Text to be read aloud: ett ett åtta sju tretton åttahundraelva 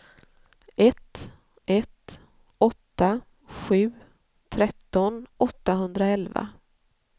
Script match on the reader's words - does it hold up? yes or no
yes